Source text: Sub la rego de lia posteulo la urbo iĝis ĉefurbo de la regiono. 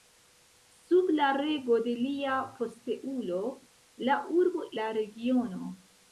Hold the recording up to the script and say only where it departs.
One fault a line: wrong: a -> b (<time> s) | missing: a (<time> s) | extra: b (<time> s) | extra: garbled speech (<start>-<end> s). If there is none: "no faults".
missing: iĝis ĉefurbo de (4.6 s)